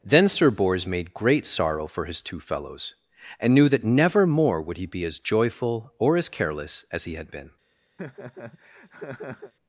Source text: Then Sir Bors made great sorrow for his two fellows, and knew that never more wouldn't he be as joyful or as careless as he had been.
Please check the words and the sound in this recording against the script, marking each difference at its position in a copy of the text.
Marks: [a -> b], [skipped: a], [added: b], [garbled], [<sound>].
Then Sir Bors made great sorrow for his two fellows, and knew that never more [wouldn't -> would] he be as joyful or as careless as he had been. [laugh]